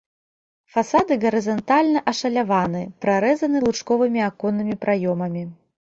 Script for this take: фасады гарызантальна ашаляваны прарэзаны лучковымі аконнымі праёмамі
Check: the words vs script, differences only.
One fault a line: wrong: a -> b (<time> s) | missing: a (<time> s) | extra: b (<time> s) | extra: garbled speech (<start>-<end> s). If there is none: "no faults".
no faults